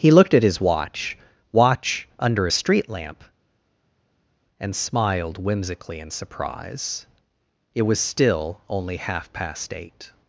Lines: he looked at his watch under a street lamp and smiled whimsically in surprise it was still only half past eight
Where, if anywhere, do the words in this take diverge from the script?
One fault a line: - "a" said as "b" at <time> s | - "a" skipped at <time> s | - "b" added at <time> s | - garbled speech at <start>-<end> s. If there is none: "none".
- "watch" added at 1.5 s